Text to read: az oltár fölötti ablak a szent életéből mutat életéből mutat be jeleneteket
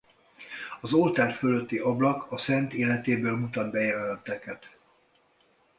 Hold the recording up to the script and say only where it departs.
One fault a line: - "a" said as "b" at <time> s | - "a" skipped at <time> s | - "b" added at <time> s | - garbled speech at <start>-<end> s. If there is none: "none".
- "életéből mutat" skipped at 3.7 s